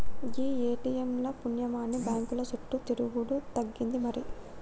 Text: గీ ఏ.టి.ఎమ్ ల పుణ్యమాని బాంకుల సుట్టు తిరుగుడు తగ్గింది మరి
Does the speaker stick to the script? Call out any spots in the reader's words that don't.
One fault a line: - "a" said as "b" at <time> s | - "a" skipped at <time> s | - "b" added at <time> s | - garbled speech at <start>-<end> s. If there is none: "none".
none